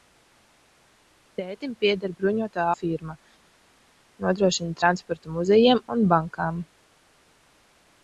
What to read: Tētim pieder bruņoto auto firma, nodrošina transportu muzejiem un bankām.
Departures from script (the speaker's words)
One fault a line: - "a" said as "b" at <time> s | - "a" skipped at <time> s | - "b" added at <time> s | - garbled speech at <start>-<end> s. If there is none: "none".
- "auto" skipped at 2.6 s